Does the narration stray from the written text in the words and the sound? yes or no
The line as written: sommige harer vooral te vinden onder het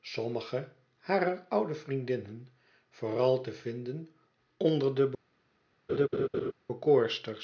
yes